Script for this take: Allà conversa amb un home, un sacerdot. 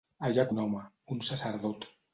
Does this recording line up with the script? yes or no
no